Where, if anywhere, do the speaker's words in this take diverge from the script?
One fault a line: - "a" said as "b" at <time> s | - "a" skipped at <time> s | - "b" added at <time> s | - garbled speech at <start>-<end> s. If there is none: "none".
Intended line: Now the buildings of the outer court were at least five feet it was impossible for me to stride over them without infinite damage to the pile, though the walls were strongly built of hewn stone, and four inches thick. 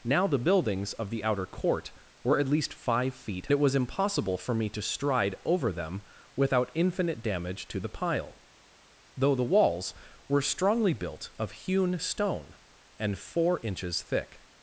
none